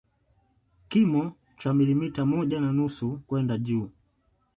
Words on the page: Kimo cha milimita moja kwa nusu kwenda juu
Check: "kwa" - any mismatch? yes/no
yes